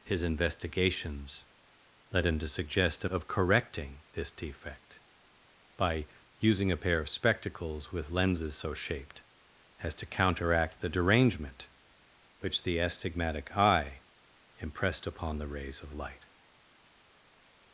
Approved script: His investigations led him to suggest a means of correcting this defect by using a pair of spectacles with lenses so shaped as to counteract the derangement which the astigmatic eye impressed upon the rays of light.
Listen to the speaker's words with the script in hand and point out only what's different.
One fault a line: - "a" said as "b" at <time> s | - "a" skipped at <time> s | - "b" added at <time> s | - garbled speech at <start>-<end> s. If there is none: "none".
- "means" skipped at 3.1 s